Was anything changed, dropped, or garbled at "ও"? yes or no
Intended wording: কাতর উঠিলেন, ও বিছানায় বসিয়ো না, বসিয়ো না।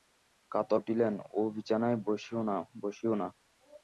no